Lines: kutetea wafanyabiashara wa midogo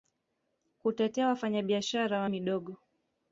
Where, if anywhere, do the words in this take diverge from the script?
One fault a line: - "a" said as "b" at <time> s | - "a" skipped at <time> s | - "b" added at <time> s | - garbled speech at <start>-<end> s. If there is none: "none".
none